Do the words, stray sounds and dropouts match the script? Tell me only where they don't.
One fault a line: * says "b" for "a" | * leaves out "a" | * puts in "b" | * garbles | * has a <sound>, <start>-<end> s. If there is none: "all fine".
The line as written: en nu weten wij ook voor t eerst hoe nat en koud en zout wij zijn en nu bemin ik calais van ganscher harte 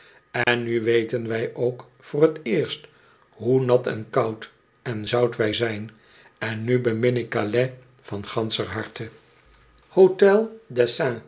* has a dropout, 0.4-0.5 s